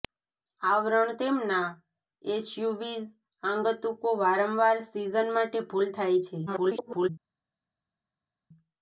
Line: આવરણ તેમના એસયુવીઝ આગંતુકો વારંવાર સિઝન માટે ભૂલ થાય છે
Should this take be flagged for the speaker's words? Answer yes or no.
yes